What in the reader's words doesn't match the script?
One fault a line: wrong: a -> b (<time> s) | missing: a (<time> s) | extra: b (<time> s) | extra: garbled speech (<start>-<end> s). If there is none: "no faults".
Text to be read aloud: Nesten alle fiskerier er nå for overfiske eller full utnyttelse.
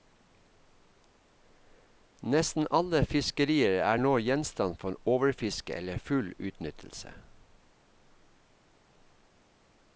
extra: gjenstand (4.2 s)